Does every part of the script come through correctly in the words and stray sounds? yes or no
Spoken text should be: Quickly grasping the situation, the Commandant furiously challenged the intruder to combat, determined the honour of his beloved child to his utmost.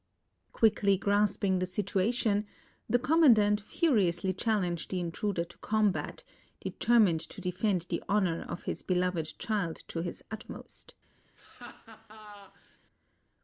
no